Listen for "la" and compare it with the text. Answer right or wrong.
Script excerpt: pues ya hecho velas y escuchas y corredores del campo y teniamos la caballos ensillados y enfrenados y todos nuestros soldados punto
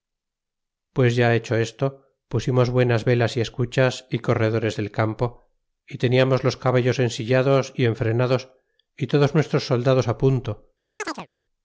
wrong